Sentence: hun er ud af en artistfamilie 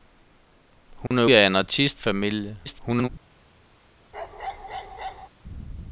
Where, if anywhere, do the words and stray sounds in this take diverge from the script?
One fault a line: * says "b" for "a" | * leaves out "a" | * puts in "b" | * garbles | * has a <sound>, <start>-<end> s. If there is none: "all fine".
* has a dropout, 1.1-1.1 s
* leaves out "ud"
* garbles
* has a bark, 4.1-5.3 s